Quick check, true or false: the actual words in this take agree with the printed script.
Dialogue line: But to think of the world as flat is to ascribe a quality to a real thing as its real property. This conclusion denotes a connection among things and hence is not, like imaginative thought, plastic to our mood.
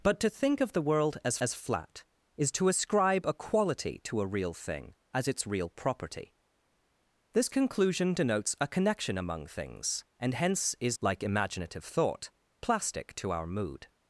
false